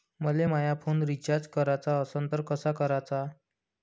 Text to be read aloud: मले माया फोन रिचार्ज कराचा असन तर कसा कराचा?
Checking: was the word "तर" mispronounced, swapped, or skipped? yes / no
no